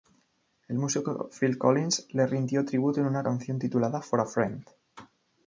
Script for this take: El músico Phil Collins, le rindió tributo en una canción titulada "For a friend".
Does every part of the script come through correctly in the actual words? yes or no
yes